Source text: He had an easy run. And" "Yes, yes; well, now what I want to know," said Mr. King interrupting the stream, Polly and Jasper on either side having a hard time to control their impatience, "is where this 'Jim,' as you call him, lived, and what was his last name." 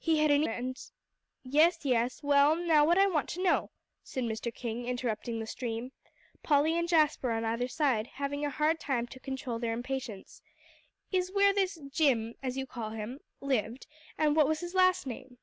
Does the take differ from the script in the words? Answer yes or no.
yes